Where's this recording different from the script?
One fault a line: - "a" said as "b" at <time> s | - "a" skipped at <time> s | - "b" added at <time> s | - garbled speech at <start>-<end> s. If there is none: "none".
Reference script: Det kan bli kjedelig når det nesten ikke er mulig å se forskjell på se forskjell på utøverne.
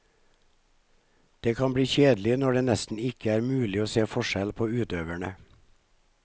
- "se forskjell på" skipped at 4.7 s